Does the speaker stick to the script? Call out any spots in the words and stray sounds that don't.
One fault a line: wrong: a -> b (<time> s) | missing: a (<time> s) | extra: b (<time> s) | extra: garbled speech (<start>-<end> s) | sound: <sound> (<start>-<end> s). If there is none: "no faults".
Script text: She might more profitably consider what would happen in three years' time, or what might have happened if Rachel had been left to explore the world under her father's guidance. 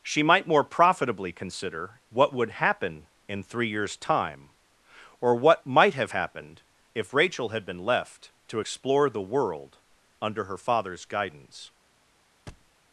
sound: thud (12.5-12.7 s)